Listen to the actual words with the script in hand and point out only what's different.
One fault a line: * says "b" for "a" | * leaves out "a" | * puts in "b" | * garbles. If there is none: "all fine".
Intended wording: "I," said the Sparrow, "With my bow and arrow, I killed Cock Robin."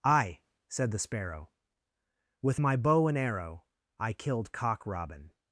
all fine